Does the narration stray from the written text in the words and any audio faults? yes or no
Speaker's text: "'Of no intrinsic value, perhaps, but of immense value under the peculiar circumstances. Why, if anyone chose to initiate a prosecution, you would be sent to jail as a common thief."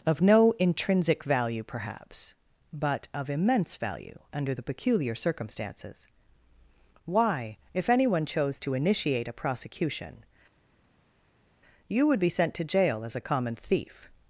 no